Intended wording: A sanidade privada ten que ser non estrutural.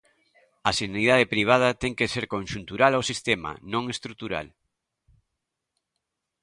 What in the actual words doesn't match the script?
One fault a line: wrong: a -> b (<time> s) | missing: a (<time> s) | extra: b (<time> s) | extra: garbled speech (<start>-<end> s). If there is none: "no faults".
extra: conxuntural ao sistema (2.3 s)